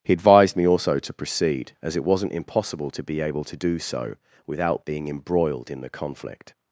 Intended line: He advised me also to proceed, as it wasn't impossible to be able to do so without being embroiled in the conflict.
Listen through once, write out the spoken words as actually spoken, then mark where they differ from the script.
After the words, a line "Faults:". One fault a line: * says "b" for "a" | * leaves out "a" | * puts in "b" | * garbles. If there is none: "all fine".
He advised me also to proceed, as it wasn't impossible to be able to do so without being embroiled in the conflict.
Faults:
all fine